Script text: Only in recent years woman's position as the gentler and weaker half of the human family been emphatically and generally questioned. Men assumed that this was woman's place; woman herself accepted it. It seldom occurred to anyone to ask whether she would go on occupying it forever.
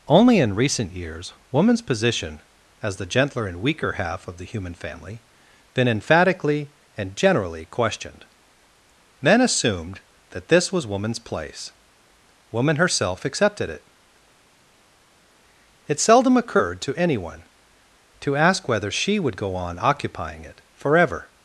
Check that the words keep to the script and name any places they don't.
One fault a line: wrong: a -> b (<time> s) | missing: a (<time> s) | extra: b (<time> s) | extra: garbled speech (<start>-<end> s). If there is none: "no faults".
no faults